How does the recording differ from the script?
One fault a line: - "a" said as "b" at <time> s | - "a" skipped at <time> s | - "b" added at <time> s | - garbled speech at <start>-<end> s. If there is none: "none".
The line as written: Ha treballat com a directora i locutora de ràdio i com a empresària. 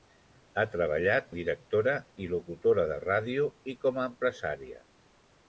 - "com" skipped at 1.3 s